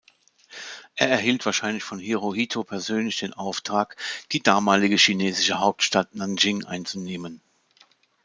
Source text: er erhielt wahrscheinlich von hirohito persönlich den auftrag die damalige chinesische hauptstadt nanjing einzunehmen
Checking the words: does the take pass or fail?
pass